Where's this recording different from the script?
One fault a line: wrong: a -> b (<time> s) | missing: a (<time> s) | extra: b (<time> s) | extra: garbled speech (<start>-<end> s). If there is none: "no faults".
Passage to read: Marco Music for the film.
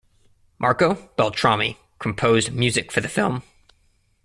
extra: Beltrami composed (1.1 s)